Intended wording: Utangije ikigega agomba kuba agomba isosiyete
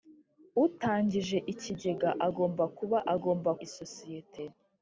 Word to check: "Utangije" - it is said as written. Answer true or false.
true